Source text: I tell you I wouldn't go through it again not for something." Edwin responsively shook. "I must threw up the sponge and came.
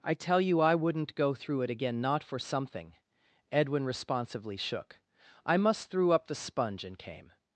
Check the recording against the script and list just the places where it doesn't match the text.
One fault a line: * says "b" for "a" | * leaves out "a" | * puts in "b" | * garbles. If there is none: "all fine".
all fine